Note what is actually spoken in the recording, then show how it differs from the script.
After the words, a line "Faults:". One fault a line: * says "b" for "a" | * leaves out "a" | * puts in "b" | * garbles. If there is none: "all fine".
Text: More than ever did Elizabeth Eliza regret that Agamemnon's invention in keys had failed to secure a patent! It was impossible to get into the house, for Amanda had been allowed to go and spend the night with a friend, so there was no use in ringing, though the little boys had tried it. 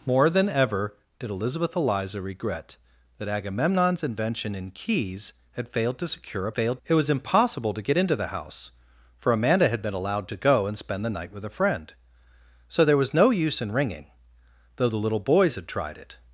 More than ever did Elizabeth Eliza regret that Agamemnon's invention in keys had failed to secure a failed! It was impossible to get into the house, for Amanda had been allowed to go and spend the night with a friend, so there was no use in ringing, though the little boys had tried it.
Faults:
* says "failed" for "patent"